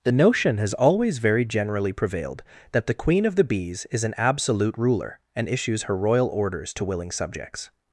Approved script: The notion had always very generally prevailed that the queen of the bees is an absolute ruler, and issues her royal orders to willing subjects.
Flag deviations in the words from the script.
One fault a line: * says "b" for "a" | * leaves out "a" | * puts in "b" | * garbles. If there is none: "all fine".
* says "has" for "had"